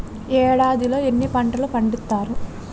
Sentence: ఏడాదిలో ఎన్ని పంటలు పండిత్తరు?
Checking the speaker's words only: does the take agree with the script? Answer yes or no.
yes